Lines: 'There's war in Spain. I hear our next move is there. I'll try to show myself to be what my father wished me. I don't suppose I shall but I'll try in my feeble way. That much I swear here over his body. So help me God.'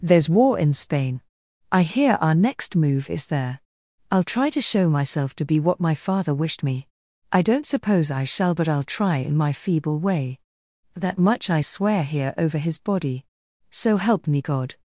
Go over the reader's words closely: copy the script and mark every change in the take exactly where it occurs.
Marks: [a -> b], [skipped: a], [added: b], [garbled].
'There's war in Spain. I hear our next move is there. I'll try to show myself to be what my father wished me. I don't suppose I shall but I'll try in my feeble way. That much I swear here over his body. So help me God.'